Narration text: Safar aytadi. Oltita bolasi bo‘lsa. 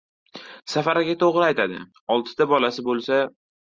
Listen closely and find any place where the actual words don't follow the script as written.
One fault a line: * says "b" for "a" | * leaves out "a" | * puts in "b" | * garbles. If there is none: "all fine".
* puts in "aka to‘g‘ri"